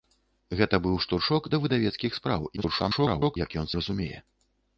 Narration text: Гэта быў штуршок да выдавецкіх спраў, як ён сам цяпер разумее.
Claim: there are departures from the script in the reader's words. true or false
true